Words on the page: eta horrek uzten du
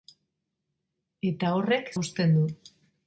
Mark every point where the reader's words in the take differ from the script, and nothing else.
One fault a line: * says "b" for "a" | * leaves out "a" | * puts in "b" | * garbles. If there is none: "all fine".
all fine